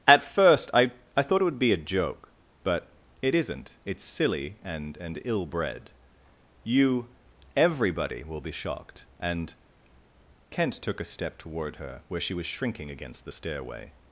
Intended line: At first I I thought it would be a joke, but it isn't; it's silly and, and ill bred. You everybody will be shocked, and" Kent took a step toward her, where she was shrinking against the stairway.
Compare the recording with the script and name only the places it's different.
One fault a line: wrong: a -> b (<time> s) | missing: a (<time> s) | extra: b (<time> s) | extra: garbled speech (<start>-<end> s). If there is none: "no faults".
no faults